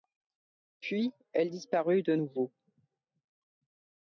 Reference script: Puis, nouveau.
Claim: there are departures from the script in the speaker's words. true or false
true